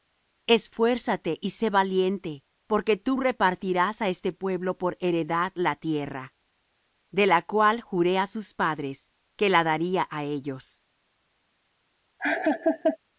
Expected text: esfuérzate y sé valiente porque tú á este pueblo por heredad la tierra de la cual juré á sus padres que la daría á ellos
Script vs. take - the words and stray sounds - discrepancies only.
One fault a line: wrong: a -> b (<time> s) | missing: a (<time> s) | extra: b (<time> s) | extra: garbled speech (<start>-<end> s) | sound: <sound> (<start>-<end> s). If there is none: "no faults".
extra: repartirás (3.2 s)
sound: laugh (12.2-13.0 s)